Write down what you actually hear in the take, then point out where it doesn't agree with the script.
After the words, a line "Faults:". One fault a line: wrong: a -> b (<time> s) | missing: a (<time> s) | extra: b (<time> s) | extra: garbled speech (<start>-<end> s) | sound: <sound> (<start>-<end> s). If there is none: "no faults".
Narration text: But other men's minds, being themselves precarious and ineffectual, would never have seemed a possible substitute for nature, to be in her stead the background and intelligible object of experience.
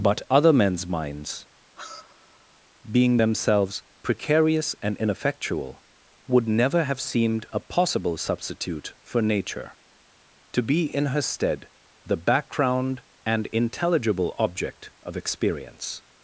But other men's minds, being themselves precarious and ineffectual, would never have seemed a possible substitute for nature, to be in her stead the background and intelligible object of experience.
Faults:
sound: sigh (1.7-2.6 s)